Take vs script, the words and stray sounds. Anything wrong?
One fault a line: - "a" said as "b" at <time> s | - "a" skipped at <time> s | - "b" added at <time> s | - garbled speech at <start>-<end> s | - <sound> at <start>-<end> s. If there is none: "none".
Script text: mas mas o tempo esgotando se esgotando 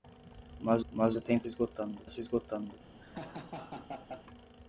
- laugh at 3.0-4.3 s